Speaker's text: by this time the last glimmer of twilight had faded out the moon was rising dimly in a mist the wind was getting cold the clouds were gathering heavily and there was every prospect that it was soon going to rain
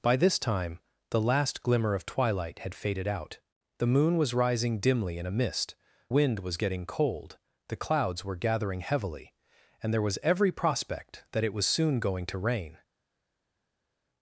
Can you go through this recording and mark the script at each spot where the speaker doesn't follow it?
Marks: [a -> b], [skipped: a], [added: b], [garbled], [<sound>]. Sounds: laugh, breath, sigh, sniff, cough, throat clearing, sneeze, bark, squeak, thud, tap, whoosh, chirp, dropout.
by this time the last glimmer of twilight had faded out the moon was rising dimly in a mist [skipped: the] wind was getting cold the clouds were gathering heavily and there was every prospect that it was soon going to rain